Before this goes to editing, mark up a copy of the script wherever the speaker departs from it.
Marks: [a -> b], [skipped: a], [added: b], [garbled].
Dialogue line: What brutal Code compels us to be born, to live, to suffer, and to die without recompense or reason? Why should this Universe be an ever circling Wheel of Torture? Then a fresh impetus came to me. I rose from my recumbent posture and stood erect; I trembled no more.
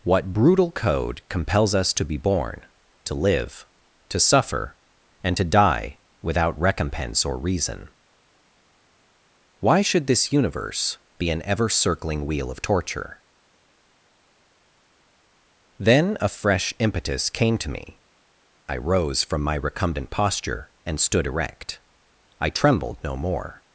What brutal Code compels us to be born, to live, to suffer, and to die without recompense or reason? Why should this Universe be an ever circling Wheel of Torture? Then a fresh impetus came to me. I rose from my recumbent posture and stood erect; I trembled no more.